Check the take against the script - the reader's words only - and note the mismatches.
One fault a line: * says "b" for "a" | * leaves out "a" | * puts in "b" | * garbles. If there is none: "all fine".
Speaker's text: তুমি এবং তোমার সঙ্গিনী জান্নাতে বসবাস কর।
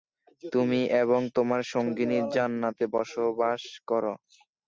all fine